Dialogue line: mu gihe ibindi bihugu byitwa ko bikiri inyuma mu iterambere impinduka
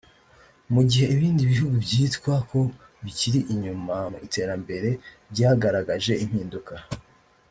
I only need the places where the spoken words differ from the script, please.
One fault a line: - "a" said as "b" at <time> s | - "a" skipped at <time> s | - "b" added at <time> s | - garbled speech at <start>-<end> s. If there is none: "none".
- "byagaragaje" added at 5.3 s